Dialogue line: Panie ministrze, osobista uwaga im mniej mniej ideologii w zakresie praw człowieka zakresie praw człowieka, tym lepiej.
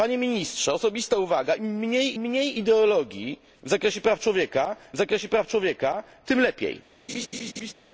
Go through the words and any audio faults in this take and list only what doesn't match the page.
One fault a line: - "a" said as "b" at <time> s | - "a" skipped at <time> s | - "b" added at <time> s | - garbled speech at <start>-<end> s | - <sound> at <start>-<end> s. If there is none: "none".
- laugh at 7.1-7.7 s